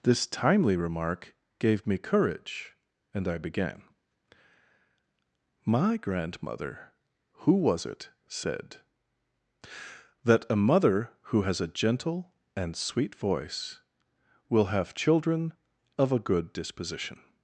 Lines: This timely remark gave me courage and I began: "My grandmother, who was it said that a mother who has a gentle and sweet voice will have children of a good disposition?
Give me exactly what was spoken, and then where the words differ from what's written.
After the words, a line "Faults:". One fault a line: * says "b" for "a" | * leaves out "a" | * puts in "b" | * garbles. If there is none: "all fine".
This timely remark gave me courage and I began: "My grandmother, who was it said that a mother who has a gentle and sweet voice will have children of a good disposition?
Faults:
all fine